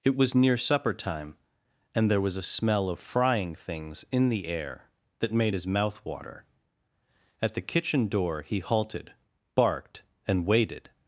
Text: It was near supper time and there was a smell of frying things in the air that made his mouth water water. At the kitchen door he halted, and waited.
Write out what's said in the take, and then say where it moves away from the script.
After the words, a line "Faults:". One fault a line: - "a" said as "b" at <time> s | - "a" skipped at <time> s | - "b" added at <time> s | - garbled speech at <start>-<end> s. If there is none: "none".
It was near supper time and there was a smell of frying things in the air that made his mouth water. At the kitchen door he halted, barked, and waited.
Faults:
- "water" skipped at 6.4 s
- "barked" added at 9.5 s